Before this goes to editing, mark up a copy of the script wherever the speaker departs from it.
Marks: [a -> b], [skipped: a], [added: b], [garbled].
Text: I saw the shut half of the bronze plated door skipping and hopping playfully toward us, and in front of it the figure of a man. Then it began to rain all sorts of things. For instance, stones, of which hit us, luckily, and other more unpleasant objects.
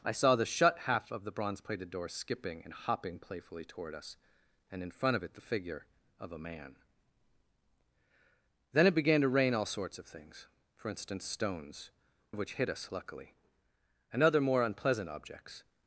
I saw the shut half of the bronze plated door skipping and hopping playfully toward us, and in front of it the figure of a man. Then it began to rain all sorts of things. For instance, stones, of which hit us, luckily, and other more unpleasant objects.